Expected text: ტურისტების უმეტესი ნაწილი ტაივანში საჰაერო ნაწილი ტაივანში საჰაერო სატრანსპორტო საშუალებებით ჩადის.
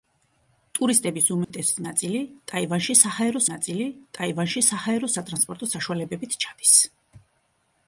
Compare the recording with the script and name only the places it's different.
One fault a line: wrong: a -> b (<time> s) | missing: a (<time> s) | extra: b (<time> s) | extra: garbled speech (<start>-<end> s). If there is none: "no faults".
no faults